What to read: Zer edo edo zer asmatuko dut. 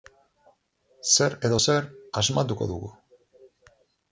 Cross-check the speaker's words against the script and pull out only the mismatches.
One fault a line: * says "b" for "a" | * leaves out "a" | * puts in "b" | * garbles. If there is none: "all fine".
* leaves out "edo"
* says "dugu" for "dut"